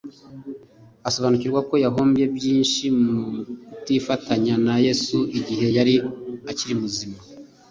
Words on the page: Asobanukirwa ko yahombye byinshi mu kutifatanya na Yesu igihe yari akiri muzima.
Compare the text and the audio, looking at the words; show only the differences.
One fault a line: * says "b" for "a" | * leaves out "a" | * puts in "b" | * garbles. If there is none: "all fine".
all fine